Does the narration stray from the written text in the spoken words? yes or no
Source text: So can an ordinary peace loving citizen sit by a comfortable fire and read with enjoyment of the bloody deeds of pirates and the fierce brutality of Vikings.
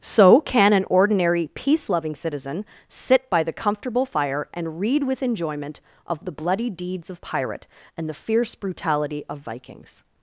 yes